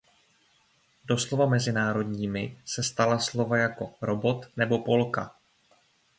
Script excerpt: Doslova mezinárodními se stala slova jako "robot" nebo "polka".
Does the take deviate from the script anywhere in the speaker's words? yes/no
no